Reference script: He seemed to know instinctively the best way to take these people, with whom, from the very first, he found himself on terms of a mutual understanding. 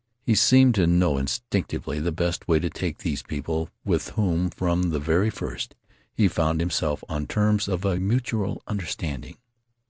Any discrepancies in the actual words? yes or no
no